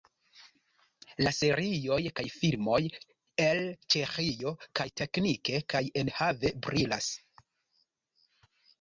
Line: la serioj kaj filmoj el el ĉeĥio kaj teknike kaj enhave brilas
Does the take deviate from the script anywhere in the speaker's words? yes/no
yes